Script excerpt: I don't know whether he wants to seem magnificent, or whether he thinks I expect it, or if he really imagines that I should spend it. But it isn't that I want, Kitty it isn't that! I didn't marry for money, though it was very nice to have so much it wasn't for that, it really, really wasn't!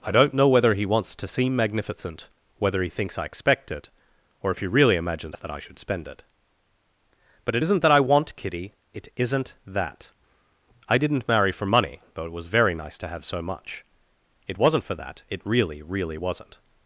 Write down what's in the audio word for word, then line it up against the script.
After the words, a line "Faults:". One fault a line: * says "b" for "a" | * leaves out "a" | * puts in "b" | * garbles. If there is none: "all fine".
I don't know whether he wants to seem magnificent, whether he thinks I expect it, or if he really imagines that I should spend it. But it isn't that I want, Kitty it isn't that! I didn't marry for money, though it was very nice to have so much it wasn't for that, it really, really wasn't!
Faults:
* leaves out "or"